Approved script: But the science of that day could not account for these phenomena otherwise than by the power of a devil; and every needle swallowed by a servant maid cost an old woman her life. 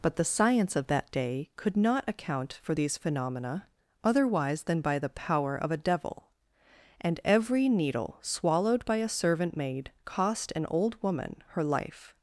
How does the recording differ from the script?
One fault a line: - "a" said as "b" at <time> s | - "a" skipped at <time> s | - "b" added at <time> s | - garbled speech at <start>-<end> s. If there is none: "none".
none